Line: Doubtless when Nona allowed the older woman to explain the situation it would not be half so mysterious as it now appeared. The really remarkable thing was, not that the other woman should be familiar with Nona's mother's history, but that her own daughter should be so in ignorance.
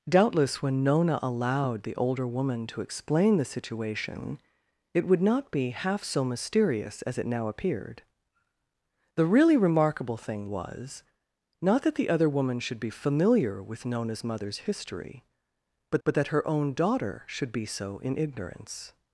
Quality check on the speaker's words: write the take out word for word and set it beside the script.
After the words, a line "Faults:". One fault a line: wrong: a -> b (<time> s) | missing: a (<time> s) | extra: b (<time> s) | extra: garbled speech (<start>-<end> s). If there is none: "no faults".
Doubtless when Nona allowed the older woman to explain the situation it would not be half so mysterious as it now appeared. The really remarkable thing was, not that the other woman should be familiar with Nona's mother's history, but but that her own daughter should be so in ignorance.
Faults:
extra: but (16.0 s)